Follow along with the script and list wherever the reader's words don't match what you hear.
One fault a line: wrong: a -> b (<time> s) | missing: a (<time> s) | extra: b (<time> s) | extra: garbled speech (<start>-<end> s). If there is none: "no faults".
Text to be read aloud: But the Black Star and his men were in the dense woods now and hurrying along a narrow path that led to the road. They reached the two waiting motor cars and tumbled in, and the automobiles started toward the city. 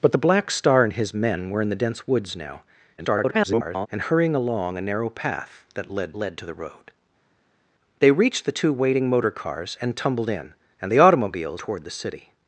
extra: garbled speech (3.0-3.9 s)
extra: led (6.1 s)
missing: started (11.6 s)